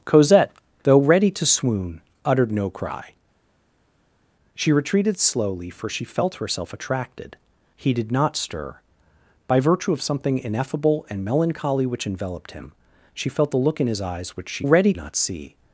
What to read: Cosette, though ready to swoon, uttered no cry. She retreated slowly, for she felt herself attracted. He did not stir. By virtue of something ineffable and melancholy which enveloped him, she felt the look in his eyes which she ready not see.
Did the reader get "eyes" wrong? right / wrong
right